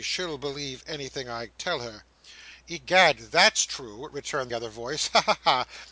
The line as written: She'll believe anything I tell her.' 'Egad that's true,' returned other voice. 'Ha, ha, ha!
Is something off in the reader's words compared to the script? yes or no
no